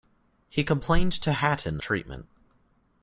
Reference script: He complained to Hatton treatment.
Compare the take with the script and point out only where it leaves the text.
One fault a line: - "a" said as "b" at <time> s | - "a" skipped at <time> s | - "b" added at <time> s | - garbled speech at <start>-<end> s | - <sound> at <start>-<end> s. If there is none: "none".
none